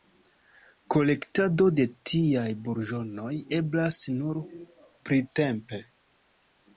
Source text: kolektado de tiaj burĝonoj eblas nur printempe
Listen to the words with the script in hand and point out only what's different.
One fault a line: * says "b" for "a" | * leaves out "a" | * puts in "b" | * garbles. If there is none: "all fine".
all fine